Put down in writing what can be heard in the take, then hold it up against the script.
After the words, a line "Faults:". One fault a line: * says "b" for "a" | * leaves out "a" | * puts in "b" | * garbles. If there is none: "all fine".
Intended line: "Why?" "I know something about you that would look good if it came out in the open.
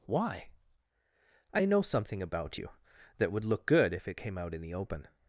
"Why?" "I know something about you that would look good if it came out in the open.
Faults:
all fine